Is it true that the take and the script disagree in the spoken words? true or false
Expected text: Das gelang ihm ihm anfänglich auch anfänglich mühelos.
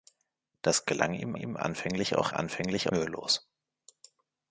false